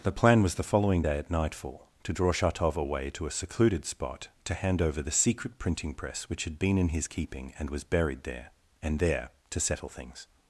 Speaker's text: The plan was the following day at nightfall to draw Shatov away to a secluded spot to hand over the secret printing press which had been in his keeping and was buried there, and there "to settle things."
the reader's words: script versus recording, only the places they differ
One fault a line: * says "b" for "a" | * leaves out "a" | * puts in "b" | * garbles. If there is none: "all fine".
all fine